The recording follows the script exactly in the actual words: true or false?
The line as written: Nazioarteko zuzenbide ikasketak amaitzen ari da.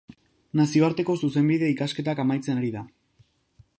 true